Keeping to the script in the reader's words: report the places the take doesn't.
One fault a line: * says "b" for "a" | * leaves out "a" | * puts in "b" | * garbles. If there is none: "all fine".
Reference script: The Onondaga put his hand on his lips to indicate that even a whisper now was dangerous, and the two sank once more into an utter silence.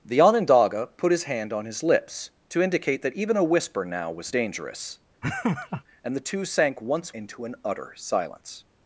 * leaves out "more"